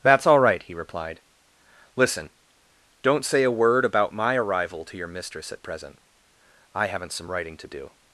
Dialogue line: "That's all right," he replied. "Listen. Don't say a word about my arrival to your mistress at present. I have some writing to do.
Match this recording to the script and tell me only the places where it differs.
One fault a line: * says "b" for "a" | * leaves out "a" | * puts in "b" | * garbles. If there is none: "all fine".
* says "haven't" for "have"